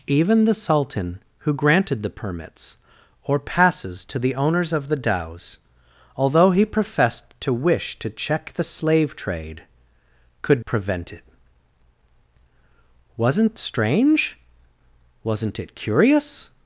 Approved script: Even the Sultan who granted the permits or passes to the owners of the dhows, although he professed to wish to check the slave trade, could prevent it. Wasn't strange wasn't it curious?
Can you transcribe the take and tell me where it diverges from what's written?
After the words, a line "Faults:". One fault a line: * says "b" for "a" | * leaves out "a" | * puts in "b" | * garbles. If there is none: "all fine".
Even the Sultan who granted the permits or passes to the owners of the dhows, although he professed to wish to check the slave trade, could prevent it. Wasn't strange wasn't it curious?
Faults:
all fine